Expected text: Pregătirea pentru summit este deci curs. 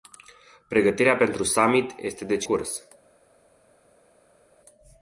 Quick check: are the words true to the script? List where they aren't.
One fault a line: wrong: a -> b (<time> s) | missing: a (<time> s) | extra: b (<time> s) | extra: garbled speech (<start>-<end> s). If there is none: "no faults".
no faults